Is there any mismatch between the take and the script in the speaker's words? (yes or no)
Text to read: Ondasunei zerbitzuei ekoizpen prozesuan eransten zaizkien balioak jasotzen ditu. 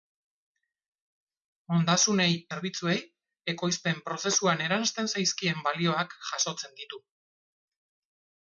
no